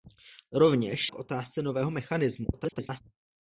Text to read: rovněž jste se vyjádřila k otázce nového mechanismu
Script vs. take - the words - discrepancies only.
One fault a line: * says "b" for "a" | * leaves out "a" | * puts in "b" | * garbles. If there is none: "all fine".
* leaves out "jste se vyjádřila"
* garbles